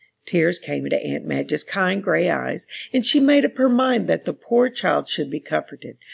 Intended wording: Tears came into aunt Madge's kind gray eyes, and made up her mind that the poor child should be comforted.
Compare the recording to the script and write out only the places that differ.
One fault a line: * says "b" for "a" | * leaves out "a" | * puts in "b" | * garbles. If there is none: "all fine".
* puts in "she"